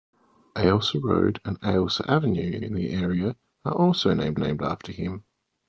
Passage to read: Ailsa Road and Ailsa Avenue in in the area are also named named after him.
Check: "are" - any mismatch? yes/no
no